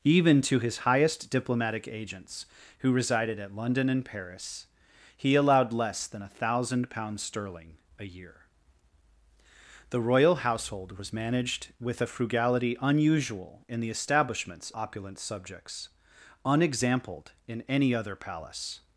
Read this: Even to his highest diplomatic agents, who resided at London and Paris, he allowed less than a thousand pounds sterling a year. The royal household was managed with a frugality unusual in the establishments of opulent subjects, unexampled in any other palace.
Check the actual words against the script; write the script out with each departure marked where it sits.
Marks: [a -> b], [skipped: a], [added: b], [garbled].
Even to his highest diplomatic agents, who resided at London and Paris, he allowed less than a thousand pounds sterling a year. The royal household was managed with a frugality unusual in the establishments [skipped: of] opulent subjects, unexampled in any other palace.